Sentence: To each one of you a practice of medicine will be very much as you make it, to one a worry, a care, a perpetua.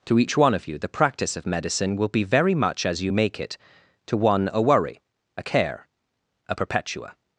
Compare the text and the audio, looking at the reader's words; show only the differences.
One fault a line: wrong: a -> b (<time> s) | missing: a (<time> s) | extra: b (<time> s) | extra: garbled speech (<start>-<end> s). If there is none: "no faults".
wrong: a -> the (0.8 s)